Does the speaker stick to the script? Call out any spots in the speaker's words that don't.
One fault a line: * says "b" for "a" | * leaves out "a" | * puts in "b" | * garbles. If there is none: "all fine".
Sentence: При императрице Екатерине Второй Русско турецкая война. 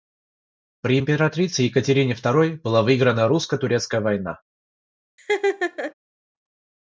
* puts in "была выиграна"